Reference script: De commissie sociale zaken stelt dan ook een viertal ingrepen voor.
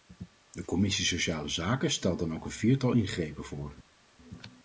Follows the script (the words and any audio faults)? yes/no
yes